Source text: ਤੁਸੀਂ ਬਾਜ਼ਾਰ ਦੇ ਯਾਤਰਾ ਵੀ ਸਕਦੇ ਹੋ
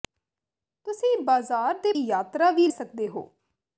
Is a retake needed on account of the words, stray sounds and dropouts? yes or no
no